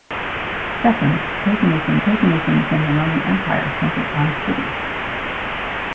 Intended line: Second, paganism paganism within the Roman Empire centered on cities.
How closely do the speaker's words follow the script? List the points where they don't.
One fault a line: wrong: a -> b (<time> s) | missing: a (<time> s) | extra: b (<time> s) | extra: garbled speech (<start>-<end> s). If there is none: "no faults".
no faults